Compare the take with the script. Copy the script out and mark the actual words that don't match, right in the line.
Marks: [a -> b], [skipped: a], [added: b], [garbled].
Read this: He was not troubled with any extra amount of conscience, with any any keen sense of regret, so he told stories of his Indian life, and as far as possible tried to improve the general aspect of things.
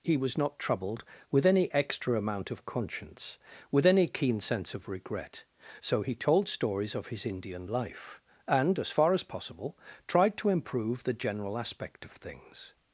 He was not troubled with any extra amount of conscience, with any [skipped: any] keen sense of regret, so he told stories of his Indian life, and as far as possible tried to improve the general aspect of things.